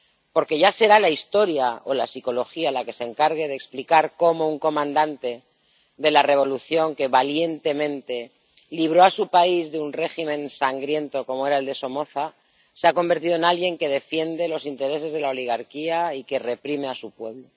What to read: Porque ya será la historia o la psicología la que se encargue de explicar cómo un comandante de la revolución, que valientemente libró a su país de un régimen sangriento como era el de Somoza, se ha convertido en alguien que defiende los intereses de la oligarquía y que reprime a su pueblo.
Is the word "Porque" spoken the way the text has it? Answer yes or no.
yes